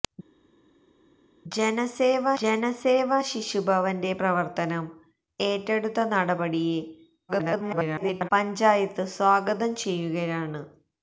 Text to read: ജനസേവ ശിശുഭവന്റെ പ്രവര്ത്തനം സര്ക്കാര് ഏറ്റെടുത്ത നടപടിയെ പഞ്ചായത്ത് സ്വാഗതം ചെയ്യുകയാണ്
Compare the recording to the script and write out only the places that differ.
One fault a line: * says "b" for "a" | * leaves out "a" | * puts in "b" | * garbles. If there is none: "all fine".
* puts in "ജനസേവ"
* leaves out "സര്ക്കാര്"
* garbles